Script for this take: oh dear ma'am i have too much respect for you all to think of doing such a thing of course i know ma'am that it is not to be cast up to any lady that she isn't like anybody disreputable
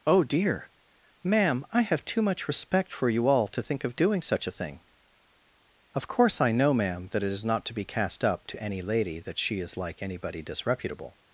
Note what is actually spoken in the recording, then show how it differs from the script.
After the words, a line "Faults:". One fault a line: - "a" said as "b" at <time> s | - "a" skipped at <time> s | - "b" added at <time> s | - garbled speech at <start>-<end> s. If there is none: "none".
oh dear ma'am i have too much respect for you all to think of doing such a thing of course i know ma'am that it is not to be cast up to any lady that she is like anybody disreputable
Faults:
- "isn't" said as "is" at 9.6 s